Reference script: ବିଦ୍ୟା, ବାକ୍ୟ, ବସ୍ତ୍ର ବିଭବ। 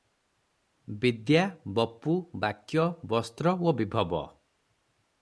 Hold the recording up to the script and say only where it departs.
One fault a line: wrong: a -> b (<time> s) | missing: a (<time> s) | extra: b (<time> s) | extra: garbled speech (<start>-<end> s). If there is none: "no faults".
extra: ବପୁ (1.8 s)
extra: ଓ (3.6 s)